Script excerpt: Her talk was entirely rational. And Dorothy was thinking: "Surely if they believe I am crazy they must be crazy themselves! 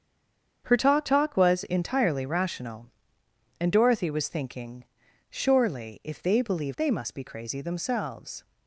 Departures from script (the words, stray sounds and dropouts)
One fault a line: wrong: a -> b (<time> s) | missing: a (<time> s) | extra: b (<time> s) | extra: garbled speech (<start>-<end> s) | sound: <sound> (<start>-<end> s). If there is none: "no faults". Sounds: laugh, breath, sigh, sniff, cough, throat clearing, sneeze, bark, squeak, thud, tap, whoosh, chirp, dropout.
extra: talk (1.0 s)
missing: I am crazy (6.8 s)